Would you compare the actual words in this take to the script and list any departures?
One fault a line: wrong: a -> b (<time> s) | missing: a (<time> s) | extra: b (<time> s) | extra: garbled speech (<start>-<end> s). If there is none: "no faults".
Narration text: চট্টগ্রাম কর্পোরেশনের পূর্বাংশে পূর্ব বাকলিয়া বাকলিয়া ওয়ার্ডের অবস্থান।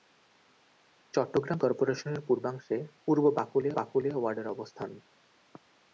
no faults